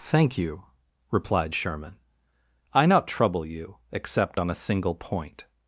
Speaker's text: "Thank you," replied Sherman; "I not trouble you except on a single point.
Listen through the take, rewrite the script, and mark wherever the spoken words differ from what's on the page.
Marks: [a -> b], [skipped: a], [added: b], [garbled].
"Thank you," replied Sherman; "I not trouble you except on a single point.